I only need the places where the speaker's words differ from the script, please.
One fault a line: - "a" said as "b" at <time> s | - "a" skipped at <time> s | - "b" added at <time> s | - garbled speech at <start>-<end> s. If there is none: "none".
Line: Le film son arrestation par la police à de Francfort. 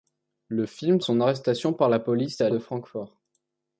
none